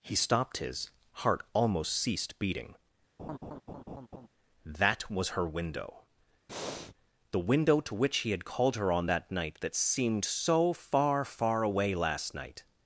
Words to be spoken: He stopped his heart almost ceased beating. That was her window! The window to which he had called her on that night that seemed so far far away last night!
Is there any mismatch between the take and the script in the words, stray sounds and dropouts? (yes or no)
yes